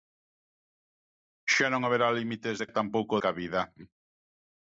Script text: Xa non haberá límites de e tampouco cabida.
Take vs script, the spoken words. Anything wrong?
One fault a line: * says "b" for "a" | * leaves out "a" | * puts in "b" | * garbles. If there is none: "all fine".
all fine